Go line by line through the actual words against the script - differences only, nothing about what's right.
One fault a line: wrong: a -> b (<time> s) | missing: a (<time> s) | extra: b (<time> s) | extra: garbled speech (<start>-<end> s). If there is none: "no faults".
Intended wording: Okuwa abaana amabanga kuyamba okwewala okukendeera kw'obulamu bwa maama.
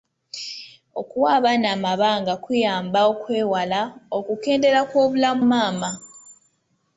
missing: bwa (5.4 s)